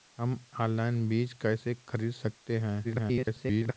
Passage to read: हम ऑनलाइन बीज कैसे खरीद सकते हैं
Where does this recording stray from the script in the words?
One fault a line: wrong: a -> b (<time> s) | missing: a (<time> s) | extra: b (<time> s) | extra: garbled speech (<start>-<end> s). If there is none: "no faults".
extra: garbled speech (2.8-3.7 s)